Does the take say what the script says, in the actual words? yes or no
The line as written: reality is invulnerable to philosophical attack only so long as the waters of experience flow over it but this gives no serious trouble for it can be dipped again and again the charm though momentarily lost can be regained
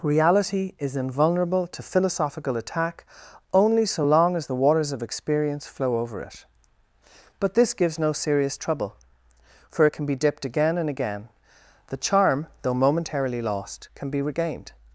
yes